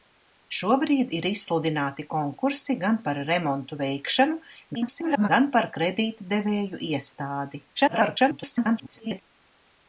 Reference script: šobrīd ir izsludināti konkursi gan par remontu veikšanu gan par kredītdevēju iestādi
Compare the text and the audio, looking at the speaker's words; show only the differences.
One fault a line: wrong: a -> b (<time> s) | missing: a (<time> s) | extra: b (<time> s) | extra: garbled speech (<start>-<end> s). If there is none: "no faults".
extra: garbled speech (4.7-5.3 s)
extra: garbled speech (7.8-9.2 s)